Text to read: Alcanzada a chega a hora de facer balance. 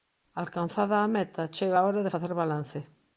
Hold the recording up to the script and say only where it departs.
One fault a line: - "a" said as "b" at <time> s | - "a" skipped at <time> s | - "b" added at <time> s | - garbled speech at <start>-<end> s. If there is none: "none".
- "meta" added at 1.1 s